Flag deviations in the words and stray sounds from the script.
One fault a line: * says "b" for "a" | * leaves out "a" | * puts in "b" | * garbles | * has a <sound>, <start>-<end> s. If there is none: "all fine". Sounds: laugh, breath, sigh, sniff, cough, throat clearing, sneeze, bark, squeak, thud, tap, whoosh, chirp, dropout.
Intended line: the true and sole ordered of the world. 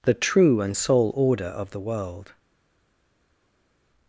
* says "order" for "ordered"